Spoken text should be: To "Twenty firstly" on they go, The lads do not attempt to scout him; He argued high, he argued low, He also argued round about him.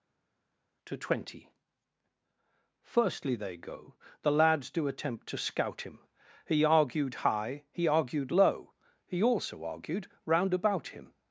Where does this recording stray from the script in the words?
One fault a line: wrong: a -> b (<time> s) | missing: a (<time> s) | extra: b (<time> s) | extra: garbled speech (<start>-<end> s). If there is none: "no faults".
missing: on (3.4 s)
missing: not (4.9 s)